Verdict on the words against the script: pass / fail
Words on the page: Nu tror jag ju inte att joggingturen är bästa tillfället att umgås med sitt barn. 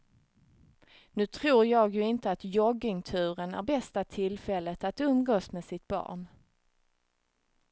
pass